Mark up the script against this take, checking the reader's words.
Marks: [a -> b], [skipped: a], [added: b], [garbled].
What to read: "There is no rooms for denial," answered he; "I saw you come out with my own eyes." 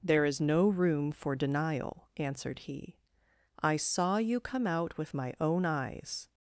"There is no [rooms -> room] for denial," answered he; "I saw you come out with my own eyes."